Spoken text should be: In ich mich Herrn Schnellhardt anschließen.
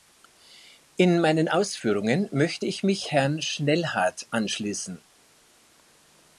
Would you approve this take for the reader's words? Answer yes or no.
no